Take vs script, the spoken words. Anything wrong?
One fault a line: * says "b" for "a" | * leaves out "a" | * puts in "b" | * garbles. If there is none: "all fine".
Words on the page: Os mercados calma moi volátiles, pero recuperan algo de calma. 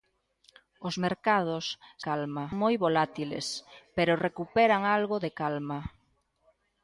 all fine